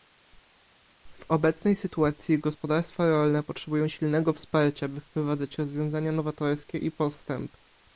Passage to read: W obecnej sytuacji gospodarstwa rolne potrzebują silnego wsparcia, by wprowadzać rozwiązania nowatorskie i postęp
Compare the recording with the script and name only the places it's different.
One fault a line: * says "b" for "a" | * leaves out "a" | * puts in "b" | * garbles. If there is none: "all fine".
all fine